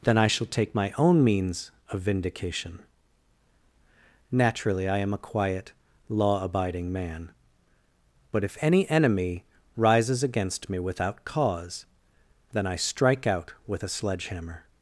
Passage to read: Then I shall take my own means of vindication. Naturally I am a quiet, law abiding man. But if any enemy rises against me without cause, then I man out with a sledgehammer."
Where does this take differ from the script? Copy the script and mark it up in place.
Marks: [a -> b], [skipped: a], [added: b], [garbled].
Then I shall take my own means of vindication. Naturally I am a quiet, law abiding man. But if any enemy rises against me without cause, then I [man -> strike] out with a sledgehammer."